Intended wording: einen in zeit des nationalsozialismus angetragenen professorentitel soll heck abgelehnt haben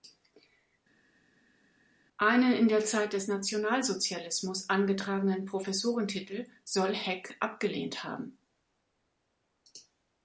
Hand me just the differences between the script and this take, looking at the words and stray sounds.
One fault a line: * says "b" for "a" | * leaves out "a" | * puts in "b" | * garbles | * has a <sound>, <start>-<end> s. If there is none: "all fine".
* puts in "der"